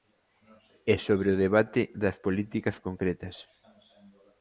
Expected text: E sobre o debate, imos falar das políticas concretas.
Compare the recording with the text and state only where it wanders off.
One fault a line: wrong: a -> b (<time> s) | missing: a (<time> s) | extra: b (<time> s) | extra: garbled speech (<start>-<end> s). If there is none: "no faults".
missing: imos falar (1.8 s)